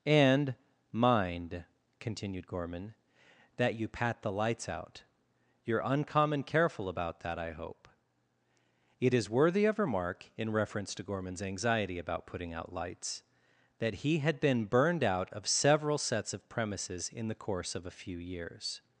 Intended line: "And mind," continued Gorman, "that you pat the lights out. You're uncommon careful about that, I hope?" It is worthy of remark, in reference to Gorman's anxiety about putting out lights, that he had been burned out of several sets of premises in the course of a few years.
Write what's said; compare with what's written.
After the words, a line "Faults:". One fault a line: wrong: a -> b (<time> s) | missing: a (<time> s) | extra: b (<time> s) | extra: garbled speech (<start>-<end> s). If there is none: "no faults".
"And mind," continued Gorman, "that you pat the lights out. You're uncommon careful about that, I hope?" It is worthy of remark, in reference to Gorman's anxiety about putting out lights, that he had been burned out of several sets of premises in the course of a few years.
Faults:
no faults